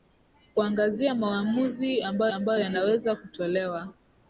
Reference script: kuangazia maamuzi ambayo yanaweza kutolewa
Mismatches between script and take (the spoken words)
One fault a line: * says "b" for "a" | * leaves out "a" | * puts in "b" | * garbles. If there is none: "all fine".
* puts in "ambayo"